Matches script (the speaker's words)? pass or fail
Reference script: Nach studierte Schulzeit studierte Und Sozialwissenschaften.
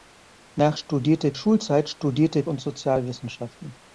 pass